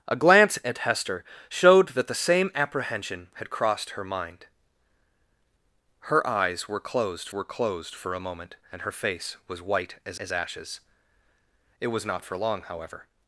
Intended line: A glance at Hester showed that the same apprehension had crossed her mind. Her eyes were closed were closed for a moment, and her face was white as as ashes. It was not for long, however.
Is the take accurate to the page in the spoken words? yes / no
yes